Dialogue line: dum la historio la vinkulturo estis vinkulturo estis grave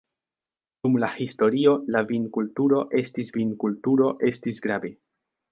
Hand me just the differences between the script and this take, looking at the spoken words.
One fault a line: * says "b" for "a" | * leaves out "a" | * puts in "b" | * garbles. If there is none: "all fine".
all fine